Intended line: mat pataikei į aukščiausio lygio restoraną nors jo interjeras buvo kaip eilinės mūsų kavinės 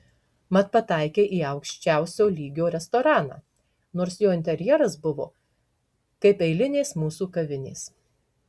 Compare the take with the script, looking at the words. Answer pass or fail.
pass